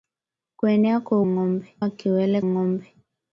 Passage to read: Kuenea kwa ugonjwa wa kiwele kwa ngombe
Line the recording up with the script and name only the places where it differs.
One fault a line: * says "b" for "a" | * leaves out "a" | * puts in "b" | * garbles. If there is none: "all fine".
* says "ngombe" for "ugonjwa"
* leaves out "kwa"